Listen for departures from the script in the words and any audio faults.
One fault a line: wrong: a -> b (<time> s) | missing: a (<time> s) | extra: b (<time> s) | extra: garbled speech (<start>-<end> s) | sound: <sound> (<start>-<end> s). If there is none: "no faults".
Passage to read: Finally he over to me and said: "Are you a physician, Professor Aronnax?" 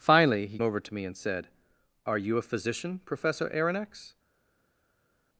no faults